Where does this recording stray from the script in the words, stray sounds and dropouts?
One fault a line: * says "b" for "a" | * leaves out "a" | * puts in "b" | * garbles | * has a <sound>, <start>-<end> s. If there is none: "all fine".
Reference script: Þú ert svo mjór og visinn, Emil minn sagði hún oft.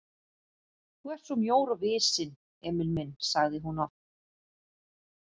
all fine